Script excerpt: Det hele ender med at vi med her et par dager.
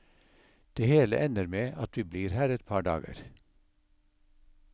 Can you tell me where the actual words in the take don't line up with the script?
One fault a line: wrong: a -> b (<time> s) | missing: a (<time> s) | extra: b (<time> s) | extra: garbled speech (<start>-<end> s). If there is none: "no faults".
wrong: med -> blir (2.0 s)